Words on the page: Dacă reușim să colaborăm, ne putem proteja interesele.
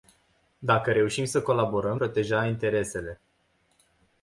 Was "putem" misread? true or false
true